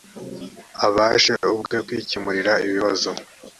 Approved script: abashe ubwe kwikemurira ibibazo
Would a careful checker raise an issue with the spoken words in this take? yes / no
no